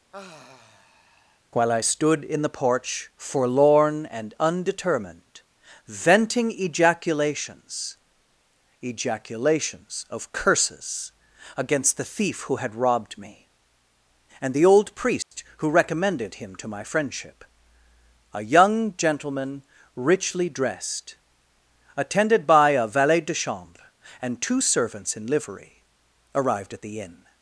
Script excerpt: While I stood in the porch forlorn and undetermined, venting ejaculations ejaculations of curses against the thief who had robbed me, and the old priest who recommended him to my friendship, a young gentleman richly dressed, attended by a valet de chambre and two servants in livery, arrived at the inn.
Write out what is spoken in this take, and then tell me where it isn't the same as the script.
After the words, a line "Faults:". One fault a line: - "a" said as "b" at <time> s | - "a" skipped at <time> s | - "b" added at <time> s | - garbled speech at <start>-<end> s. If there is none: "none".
While I stood in the porch forlorn and undetermined, venting ejaculations ejaculations of curses against the thief who had robbed me, and the old priest who recommended him to my friendship, a young gentleman richly dressed, attended by a valet de chambre and two servants in livery, arrived at the inn.
Faults:
none